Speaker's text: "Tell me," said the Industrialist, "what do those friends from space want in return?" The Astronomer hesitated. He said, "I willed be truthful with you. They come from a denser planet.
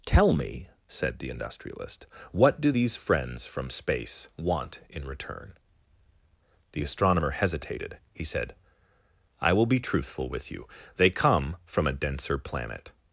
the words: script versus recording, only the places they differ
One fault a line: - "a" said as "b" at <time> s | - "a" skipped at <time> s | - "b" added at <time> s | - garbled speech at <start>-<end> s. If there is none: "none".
- "those" said as "these" at 2.7 s
- "willed" said as "will" at 9.5 s